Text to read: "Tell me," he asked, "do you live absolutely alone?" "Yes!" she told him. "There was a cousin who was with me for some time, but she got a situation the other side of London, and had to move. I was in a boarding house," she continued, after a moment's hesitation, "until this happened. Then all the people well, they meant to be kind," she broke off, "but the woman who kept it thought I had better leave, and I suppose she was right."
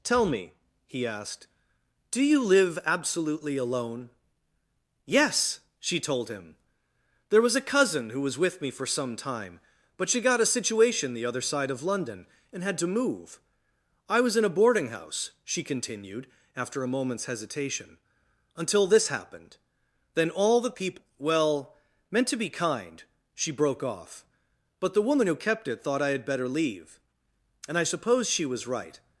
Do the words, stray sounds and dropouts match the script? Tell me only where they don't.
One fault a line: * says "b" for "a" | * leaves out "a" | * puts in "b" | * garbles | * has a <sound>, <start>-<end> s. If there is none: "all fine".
* leaves out "they"